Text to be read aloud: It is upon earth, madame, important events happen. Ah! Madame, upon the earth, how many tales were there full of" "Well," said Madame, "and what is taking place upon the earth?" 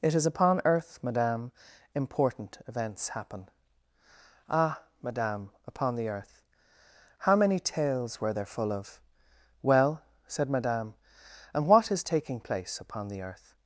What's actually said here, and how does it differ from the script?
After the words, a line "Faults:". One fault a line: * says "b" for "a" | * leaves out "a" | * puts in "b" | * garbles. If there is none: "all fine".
It is upon earth, madame, important events happen. Ah! Madame, upon the earth, how many tales were there full of" "Well," said Madame, "and what is taking place upon the earth?"
Faults:
all fine